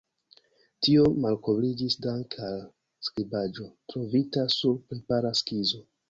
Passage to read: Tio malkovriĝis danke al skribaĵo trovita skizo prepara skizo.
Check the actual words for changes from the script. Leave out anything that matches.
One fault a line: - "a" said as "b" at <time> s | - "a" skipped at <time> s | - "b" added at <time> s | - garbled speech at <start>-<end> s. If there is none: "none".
- "skizo" said as "sur" at 4.5 s